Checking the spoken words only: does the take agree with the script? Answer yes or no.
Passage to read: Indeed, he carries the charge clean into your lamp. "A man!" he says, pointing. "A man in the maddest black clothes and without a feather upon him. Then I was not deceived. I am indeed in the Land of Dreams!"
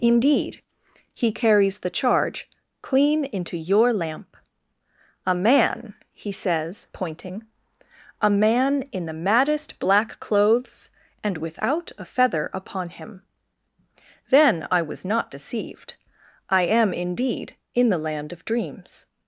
yes